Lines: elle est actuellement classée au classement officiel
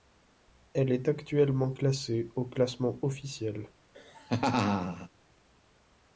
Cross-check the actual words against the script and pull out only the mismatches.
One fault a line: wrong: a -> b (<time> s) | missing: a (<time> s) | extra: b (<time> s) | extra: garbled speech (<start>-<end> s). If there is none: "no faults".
no faults